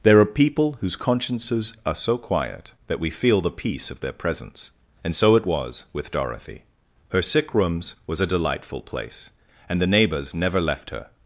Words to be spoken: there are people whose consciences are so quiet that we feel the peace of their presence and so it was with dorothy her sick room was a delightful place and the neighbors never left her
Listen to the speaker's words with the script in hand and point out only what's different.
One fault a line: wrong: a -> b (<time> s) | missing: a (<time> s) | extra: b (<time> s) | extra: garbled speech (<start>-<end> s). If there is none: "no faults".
wrong: room -> rooms (7.5 s)